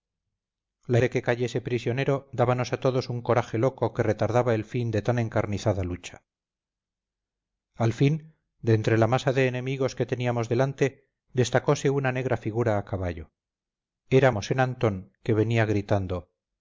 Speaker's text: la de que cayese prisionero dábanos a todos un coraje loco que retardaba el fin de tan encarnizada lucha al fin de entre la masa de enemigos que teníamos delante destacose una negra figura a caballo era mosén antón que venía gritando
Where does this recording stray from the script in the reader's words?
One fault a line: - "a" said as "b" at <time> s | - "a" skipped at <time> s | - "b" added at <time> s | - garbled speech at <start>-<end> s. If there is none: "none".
none